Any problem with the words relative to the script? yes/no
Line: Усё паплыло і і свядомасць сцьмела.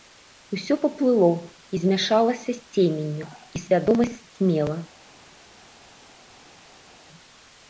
yes